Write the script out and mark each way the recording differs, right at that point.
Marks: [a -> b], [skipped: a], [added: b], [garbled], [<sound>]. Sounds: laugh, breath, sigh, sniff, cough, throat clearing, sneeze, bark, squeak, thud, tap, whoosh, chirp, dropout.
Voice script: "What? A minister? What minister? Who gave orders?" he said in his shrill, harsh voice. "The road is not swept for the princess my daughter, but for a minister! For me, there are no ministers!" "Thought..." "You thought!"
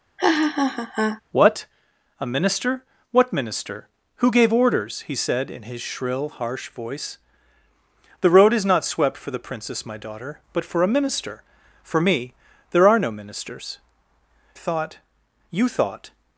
[laugh] "What? A minister? What minister? Who gave orders?" he said in his shrill, harsh voice. "The road is not swept for the princess my daughter, but for a minister! For me, there are no ministers!" "Thought..." "You thought!"